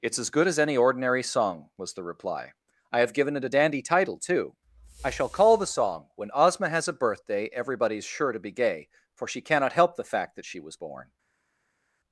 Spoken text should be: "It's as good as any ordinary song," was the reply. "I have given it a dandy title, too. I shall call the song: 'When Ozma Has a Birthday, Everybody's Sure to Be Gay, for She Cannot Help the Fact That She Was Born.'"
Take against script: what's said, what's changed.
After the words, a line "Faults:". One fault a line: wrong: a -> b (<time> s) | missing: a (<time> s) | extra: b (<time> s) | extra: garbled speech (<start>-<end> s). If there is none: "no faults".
"It's as good as any ordinary song," was the reply. "I have given it a dandy title, too. I shall call the song: 'When Ozma Has a Birthday, Everybody's Sure to Be Gay, for She Cannot Help the Fact That She Was Born.'"
Faults:
no faults